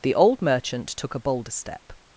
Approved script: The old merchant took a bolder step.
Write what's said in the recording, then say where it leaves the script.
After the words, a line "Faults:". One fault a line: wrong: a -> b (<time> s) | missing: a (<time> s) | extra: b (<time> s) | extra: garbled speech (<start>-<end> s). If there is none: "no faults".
The old merchant took a bolder step.
Faults:
no faults